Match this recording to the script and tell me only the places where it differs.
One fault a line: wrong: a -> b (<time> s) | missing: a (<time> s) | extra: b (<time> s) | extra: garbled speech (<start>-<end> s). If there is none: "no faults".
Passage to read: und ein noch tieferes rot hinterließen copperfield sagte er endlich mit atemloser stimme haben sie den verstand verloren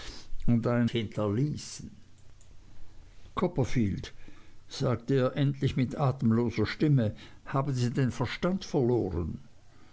missing: noch tieferes rot (0.9 s)